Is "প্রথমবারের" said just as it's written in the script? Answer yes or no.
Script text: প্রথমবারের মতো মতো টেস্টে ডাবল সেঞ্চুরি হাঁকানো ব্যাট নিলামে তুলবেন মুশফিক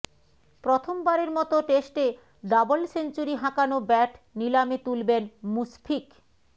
yes